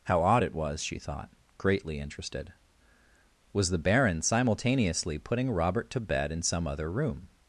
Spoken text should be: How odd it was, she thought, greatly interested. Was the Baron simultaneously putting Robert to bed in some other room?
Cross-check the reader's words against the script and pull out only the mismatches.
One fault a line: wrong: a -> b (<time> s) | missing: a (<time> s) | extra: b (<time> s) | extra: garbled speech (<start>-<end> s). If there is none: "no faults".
no faults